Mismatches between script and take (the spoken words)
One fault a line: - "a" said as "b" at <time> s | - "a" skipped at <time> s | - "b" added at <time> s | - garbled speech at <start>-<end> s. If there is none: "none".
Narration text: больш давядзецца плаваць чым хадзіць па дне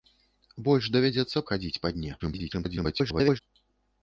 - "плаваць чым" skipped at 1.4 s
- garbled speech at 2.2-3.4 s